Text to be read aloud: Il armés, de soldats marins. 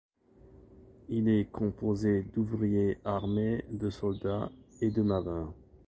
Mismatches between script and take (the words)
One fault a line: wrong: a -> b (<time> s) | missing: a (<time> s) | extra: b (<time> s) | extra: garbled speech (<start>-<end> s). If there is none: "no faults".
extra: est composé d'ouvriers (1.3 s)
extra: et de (4.8 s)